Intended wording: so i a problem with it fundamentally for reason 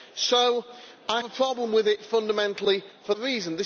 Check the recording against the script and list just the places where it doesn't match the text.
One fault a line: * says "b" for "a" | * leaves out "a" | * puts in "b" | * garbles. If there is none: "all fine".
all fine